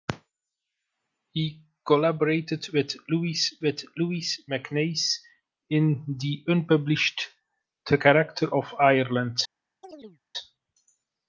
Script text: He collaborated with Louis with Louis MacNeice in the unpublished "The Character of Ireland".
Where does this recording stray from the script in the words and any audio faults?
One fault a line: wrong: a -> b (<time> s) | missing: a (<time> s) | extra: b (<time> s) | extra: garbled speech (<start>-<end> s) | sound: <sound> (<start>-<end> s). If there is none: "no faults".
sound: chirp (9.8-10.2 s)